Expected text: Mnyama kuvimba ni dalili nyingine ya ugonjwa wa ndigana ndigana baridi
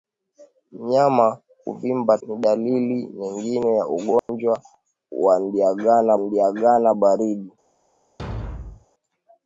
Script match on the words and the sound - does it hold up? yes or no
no